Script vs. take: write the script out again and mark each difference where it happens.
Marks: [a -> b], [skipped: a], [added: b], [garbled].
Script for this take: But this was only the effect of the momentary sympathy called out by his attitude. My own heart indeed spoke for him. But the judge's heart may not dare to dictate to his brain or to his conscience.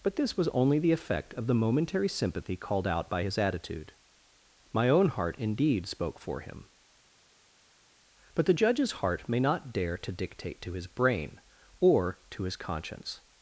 But this was only the effect of the momentary sympathy called out by his attitude. My own heart indeed spoke for him. But the judge's heart may not dare to dictate to his brain or to his conscience.